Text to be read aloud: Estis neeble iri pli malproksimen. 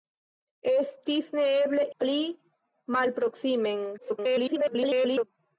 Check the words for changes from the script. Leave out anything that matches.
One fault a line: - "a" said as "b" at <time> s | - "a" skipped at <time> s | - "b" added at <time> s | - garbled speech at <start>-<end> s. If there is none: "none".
- "iri" skipped at 1.9 s
- garbled speech at 4.0-5.2 s